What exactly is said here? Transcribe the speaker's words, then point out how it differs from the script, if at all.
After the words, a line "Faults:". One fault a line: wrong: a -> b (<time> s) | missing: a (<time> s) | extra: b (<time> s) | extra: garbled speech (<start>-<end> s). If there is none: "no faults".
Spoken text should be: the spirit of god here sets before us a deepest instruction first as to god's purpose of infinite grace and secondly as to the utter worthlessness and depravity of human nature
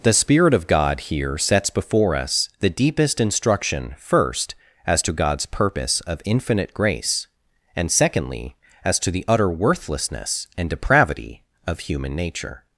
the spirit of god here sets before us the deepest instruction first as to god's purpose of infinite grace and secondly as to the utter worthlessness and depravity of human nature
Faults:
wrong: a -> the (2.6 s)